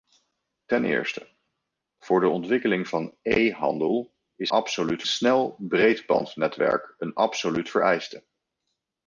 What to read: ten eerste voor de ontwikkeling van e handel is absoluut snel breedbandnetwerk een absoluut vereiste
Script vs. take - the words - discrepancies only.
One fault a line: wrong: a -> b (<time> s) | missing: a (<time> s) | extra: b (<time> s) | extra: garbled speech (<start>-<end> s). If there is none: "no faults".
no faults